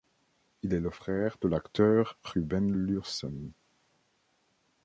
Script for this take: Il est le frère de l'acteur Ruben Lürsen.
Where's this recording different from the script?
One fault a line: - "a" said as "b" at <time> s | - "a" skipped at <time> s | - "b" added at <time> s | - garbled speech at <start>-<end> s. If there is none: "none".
none